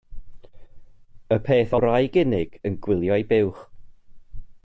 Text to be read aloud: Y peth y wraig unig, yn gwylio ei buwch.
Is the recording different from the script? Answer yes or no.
no